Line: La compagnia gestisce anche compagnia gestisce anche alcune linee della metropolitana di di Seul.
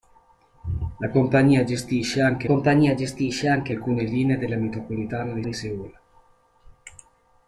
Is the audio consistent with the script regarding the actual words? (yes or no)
yes